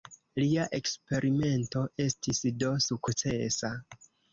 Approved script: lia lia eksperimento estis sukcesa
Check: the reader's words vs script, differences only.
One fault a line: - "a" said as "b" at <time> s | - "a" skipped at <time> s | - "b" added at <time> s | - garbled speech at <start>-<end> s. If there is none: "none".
- "lia" skipped at 0.6 s
- "do" added at 2.6 s